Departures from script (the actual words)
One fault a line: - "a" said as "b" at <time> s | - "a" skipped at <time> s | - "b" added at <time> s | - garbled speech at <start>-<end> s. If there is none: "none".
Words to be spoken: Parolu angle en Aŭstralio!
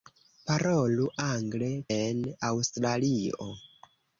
none